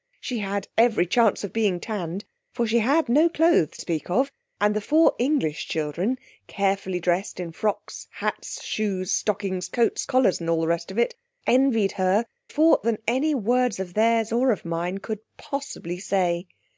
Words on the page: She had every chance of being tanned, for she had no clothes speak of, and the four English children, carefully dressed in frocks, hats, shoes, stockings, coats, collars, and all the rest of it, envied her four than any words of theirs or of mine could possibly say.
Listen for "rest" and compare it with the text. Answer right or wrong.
right